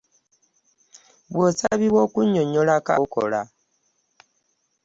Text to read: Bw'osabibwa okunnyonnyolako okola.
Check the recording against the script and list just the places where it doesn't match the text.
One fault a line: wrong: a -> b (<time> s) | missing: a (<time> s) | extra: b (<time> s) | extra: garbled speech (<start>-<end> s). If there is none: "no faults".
no faults